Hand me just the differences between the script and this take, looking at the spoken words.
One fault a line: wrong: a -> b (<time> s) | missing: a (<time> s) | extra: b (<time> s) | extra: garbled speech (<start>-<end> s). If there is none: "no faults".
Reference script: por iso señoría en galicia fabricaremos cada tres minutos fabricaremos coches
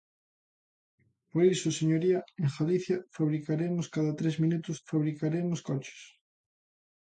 no faults